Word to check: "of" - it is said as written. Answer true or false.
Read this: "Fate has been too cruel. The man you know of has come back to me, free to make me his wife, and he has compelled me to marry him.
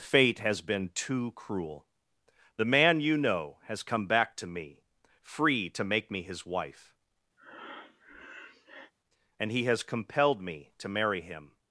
false